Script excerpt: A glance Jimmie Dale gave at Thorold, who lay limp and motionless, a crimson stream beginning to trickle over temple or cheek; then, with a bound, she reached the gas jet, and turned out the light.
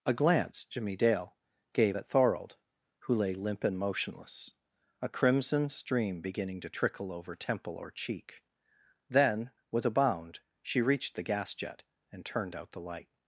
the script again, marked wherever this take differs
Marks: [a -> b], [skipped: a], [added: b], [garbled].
A glance Jimmie Dale gave at Thorold, who lay limp and motionless, a crimson stream beginning to trickle over temple or cheek; then, with a bound, she reached the gas jet, and turned out the light.